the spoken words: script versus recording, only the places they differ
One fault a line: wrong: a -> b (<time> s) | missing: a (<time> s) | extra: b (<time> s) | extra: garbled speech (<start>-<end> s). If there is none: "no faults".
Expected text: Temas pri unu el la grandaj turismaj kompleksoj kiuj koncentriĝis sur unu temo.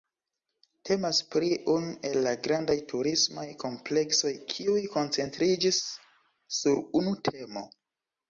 no faults